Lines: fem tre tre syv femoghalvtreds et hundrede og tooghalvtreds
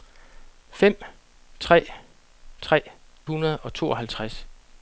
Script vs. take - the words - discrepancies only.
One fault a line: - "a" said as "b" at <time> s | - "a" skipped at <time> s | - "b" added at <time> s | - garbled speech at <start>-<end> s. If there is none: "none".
- "syv femoghalvtreds et" skipped at 2.8 s